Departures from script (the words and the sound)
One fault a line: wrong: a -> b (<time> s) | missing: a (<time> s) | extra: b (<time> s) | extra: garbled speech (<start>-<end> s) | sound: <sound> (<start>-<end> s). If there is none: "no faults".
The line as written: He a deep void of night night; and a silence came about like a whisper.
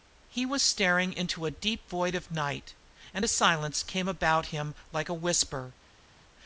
extra: was staring into (0.5 s)
missing: night (2.7 s)
extra: him (4.5 s)